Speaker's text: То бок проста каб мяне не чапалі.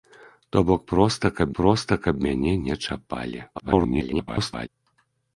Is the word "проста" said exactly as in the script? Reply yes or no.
yes